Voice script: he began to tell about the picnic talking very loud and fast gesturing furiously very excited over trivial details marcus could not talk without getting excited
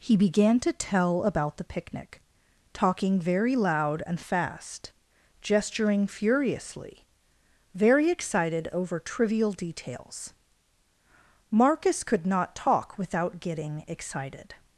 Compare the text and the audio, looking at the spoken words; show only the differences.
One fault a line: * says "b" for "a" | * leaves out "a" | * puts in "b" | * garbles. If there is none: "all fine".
all fine